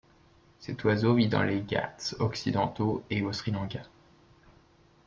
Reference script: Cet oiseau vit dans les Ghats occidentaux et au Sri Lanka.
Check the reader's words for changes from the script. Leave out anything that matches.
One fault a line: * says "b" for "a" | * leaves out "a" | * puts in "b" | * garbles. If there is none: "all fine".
all fine